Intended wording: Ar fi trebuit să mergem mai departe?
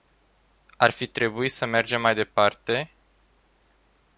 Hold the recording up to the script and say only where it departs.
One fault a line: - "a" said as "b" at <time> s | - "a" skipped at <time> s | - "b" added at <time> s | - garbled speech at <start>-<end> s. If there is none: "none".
none